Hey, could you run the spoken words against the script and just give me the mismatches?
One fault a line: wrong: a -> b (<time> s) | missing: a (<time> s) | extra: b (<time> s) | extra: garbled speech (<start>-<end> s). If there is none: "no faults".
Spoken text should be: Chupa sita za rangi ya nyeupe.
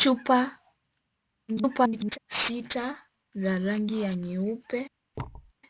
extra: garbled speech (1.5-2.2 s)